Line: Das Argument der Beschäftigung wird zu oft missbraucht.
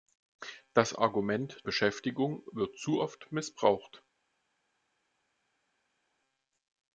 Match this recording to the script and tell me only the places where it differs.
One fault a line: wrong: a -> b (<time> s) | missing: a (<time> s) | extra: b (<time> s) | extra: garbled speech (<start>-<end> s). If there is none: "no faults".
missing: der (1.6 s)